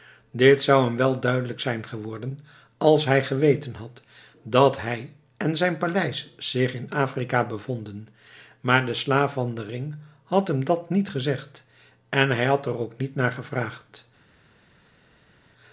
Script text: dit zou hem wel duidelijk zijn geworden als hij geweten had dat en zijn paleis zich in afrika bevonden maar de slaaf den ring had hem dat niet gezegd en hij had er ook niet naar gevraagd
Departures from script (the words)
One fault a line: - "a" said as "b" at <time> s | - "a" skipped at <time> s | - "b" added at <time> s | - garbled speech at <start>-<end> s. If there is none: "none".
- "hij" added at 4.8 s
- "van" added at 9.3 s